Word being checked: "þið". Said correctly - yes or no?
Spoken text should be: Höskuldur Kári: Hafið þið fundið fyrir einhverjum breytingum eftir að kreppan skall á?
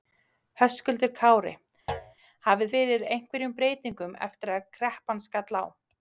no